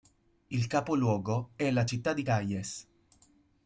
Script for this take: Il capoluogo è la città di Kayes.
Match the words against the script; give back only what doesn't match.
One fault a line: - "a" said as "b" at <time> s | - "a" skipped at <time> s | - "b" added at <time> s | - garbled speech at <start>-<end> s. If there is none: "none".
none